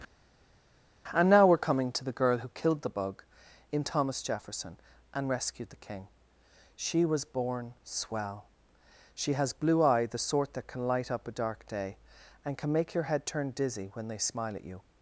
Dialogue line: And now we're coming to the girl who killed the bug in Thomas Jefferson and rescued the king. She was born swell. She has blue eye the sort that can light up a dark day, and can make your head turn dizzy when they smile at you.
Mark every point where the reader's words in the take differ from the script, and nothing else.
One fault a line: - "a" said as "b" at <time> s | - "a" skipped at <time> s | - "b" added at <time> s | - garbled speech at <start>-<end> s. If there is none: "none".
none